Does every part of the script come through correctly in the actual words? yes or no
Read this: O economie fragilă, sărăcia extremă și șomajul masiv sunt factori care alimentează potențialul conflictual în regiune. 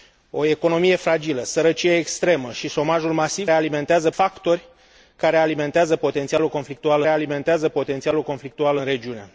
no